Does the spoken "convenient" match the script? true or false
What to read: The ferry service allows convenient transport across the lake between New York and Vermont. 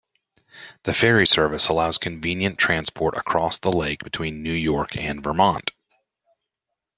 true